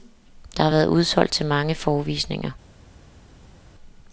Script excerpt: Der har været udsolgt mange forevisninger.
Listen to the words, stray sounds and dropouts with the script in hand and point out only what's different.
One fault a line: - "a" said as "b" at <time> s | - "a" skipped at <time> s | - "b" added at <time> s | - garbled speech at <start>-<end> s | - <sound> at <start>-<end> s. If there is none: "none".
- "til" added at 1.3 s